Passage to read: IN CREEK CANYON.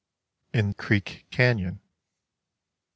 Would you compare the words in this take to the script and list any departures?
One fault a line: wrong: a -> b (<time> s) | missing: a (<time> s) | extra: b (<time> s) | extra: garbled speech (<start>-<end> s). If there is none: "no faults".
no faults